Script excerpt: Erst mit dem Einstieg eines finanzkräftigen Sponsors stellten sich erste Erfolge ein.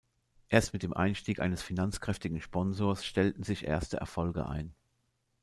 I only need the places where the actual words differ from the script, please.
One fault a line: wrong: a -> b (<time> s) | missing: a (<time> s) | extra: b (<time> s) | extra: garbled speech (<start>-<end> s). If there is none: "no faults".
no faults